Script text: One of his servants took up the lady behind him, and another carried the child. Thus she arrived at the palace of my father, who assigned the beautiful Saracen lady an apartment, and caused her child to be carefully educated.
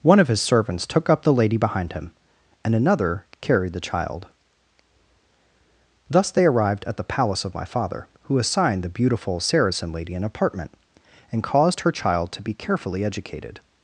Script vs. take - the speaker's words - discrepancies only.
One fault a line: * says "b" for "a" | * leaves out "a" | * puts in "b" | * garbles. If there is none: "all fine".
* says "they" for "she"